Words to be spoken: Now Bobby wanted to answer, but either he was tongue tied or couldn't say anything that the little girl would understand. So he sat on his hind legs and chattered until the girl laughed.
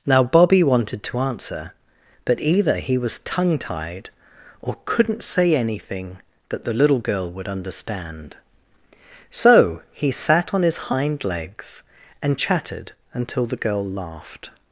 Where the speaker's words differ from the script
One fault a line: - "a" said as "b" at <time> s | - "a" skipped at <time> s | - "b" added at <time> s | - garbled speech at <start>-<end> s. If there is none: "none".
none